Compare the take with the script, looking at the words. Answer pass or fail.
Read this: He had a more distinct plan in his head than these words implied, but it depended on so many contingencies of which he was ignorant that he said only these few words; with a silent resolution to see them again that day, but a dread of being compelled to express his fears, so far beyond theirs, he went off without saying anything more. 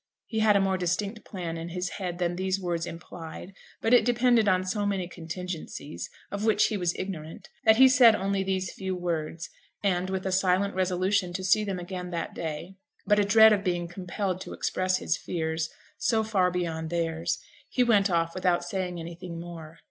fail